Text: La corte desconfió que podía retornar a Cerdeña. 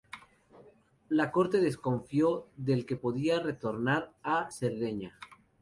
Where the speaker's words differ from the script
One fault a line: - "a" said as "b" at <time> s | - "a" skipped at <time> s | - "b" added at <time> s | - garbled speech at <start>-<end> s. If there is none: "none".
- "del" added at 2.6 s